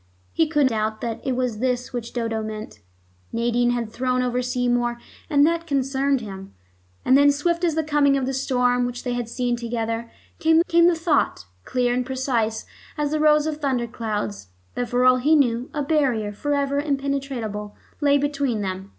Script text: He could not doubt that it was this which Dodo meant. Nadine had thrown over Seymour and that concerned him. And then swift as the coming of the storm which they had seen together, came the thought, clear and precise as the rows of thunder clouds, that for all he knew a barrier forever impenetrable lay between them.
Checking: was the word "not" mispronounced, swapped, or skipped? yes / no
yes